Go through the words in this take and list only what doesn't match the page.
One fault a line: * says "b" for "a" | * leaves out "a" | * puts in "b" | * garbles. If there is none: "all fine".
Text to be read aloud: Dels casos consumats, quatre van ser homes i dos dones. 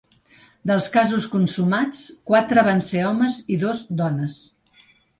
all fine